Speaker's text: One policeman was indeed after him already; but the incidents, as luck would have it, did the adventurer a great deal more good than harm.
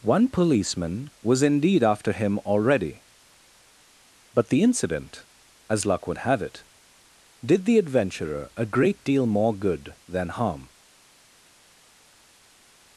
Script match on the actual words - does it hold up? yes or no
no